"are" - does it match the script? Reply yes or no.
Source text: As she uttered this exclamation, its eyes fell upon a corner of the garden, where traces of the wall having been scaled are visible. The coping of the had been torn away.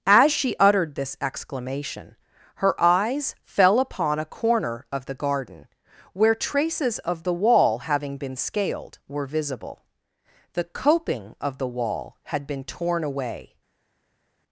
no